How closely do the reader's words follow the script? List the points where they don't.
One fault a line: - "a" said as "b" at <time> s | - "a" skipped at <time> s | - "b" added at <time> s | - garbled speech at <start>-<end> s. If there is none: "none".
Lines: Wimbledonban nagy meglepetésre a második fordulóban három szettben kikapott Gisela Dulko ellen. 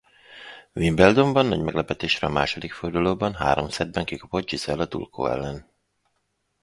none